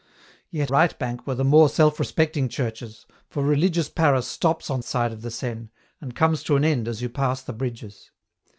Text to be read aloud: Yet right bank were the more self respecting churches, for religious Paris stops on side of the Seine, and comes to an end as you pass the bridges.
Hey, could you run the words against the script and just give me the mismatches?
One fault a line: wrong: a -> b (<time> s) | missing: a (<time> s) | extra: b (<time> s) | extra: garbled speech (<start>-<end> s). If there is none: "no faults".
no faults